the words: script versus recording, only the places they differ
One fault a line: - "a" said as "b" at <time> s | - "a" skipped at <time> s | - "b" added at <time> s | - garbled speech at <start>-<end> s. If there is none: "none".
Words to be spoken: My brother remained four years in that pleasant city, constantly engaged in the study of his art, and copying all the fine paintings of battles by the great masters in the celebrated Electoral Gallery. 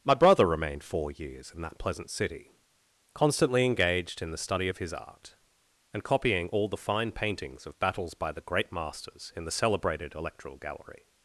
none